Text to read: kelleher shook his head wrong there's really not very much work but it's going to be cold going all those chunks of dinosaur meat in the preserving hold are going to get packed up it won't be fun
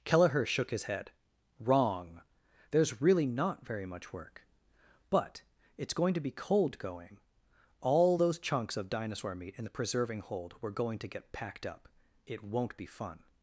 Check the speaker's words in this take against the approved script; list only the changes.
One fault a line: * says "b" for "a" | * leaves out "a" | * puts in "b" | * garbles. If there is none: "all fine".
* says "were" for "are"